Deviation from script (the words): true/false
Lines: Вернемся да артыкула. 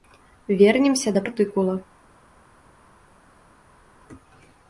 false